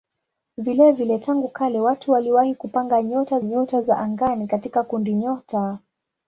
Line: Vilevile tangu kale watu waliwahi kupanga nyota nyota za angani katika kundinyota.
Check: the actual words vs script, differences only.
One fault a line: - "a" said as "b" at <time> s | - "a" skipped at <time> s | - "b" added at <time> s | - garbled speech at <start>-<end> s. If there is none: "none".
none